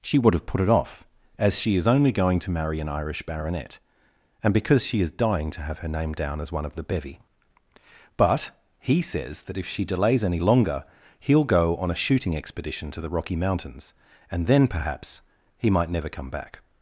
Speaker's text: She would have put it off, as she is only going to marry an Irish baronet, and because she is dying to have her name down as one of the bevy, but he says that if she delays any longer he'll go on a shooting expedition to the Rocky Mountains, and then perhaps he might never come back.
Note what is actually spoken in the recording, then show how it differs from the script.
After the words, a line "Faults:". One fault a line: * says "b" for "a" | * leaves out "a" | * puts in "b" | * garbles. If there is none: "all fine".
She would have put it off, as she is only going to marry an Irish baronet, and because she is dying to have her name down as one of the bevy, but he says that if she delays any longer he'll go on a shooting expedition to the Rocky Mountains, and then perhaps he might never come back.
Faults:
all fine